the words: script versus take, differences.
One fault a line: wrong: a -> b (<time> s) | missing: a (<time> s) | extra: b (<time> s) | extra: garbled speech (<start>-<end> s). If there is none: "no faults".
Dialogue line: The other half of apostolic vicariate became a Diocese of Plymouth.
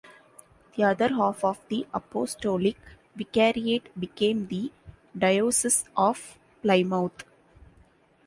extra: the (1.7 s)
wrong: a -> the (4.5 s)